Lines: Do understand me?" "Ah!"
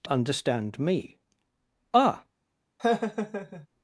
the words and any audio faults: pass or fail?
fail